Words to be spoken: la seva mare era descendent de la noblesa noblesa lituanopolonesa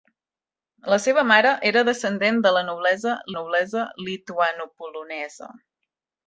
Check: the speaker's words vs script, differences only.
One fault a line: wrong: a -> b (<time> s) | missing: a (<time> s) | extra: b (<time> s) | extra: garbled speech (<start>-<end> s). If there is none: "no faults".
no faults